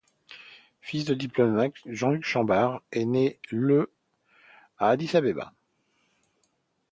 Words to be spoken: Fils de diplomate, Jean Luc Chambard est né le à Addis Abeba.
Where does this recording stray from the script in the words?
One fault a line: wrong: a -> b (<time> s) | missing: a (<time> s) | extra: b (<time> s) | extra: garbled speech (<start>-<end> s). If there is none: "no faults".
no faults